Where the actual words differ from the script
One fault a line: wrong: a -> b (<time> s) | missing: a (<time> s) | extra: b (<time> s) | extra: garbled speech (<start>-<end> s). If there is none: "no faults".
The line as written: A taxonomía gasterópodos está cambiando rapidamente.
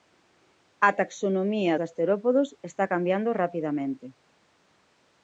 no faults